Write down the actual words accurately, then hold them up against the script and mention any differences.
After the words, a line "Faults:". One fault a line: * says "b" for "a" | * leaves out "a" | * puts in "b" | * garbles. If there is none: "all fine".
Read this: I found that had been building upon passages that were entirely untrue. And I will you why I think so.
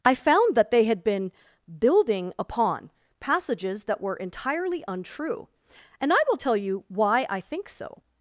I found that they had been building upon passages that were entirely untrue. And I will tell you why I think so.
Faults:
* puts in "they"
* puts in "tell"